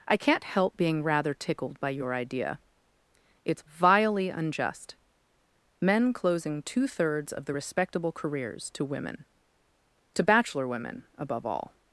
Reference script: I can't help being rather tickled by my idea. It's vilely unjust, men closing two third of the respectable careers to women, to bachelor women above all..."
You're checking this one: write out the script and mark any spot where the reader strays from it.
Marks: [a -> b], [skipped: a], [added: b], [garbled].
I can't help being rather tickled by [my -> your] idea. It's vilely unjust, men closing two [third -> thirds] of the respectable careers to women, to bachelor women above all..."